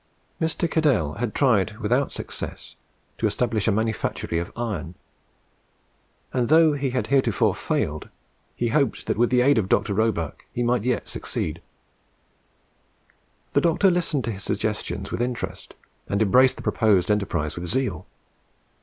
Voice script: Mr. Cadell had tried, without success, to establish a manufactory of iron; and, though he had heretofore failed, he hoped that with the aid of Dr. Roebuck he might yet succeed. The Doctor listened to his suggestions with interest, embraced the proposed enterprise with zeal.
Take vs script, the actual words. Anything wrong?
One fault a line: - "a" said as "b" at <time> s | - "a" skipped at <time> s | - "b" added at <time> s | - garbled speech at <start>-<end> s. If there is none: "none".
- "and" added at 16.1 s